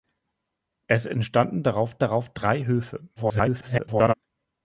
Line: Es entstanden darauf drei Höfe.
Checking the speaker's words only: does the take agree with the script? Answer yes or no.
no